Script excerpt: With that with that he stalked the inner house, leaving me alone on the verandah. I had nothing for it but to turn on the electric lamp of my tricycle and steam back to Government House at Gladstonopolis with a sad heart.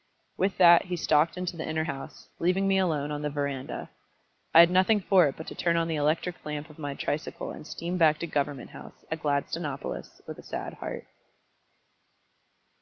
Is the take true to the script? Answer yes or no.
no